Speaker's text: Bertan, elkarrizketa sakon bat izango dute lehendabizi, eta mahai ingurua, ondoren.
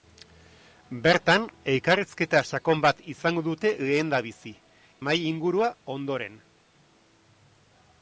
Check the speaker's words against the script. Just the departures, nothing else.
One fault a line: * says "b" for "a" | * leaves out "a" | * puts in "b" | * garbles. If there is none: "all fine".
* leaves out "eta"